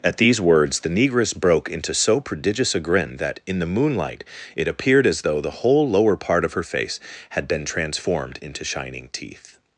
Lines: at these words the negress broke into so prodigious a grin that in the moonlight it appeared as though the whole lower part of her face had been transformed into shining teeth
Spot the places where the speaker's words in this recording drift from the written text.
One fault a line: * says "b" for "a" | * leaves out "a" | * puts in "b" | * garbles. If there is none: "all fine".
all fine